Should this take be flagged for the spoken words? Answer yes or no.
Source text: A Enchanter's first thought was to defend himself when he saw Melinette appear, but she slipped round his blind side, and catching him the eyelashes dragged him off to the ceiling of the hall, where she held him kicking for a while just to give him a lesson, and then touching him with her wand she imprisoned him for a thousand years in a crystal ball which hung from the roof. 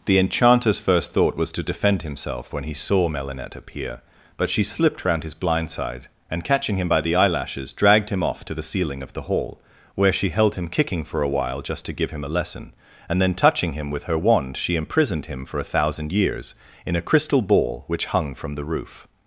yes